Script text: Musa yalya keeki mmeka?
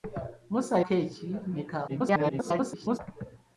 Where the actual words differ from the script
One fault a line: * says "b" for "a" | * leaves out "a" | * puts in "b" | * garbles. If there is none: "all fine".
* leaves out "yalya"
* garbles